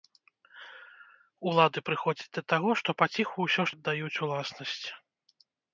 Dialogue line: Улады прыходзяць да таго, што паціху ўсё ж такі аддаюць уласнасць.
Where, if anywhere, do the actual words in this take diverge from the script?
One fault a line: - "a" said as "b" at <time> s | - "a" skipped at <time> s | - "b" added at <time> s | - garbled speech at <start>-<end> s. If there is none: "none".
- "такі" skipped at 3.8 s